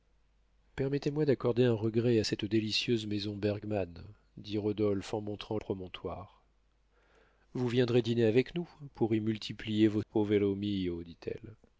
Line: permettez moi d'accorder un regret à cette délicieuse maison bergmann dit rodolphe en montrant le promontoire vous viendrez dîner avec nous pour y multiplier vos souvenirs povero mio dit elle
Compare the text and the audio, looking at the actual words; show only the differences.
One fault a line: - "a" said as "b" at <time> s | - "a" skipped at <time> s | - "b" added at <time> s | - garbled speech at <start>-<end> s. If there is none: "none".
- "le" skipped at 5.6 s
- "souvenirs" skipped at 10.0 s